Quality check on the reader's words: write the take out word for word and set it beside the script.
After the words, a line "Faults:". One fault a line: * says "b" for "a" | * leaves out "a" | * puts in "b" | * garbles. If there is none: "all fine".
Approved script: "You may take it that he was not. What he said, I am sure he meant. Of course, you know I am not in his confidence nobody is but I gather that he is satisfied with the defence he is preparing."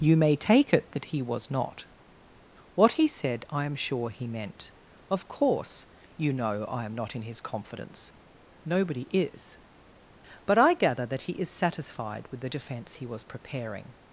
"You may take it that he was not. What he said, I am sure he meant. Of course, you know I am not in his confidence nobody is but I gather that he is satisfied with the defence he was preparing."
Faults:
* says "was" for "is"